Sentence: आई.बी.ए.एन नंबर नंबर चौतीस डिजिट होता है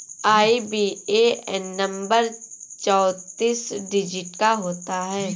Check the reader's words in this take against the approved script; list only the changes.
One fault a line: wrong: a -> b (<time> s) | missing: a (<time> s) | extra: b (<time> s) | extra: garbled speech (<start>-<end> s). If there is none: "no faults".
missing: नंबर (2.3 s)
extra: का (4.4 s)